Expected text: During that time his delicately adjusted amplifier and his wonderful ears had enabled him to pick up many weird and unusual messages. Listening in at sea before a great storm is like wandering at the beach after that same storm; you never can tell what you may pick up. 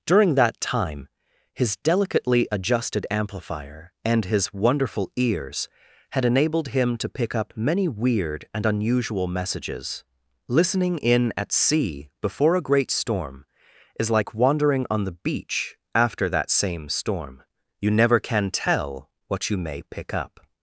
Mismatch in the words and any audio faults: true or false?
true